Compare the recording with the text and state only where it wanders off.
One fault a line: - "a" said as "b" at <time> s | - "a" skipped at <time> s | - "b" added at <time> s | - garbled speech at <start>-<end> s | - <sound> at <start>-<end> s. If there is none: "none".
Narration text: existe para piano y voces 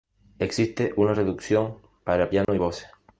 - "una reducción" added at 1.0 s
- dropout at 2.4-2.5 s